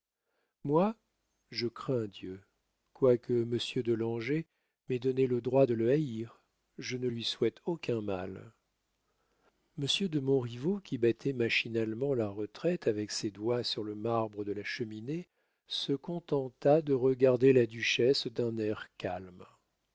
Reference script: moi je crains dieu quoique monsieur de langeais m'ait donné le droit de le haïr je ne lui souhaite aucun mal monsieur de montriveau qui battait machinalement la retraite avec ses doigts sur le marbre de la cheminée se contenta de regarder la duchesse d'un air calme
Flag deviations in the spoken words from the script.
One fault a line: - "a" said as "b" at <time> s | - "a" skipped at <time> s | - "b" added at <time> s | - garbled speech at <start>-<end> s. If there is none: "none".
none